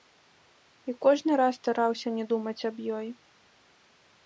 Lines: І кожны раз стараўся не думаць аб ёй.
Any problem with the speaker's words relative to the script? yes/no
no